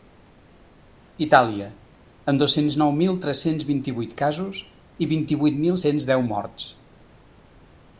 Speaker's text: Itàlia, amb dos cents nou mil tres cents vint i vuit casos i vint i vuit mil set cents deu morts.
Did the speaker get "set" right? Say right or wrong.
wrong